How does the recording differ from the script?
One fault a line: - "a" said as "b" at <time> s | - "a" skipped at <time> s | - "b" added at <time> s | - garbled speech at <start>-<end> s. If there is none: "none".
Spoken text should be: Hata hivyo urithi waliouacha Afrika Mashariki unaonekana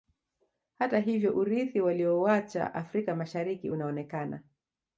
none